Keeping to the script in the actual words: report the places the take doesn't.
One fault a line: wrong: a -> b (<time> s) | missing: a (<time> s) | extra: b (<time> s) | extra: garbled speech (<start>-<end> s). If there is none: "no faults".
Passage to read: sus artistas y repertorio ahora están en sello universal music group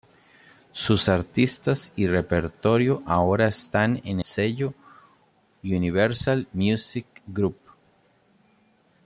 no faults